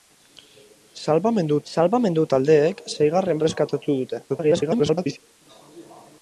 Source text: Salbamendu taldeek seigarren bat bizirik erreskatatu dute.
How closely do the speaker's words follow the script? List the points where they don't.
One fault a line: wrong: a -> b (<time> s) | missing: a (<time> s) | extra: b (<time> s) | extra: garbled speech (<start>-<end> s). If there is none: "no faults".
extra: salbamendu (1.7 s)
missing: bat bizirik (3.4 s)
extra: garbled speech (4.3-5.2 s)